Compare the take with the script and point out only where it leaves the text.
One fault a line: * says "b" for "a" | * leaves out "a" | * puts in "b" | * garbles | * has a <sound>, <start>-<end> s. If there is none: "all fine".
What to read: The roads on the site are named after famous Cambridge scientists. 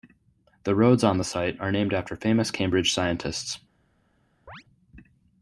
* has a chirp, 4.5-4.6 s